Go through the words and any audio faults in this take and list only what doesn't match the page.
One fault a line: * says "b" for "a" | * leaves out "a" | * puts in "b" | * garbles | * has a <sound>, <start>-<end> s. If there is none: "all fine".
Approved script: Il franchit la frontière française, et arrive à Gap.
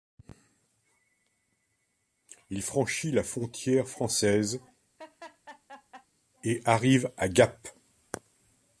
* has a laugh, 5.0-6.1 s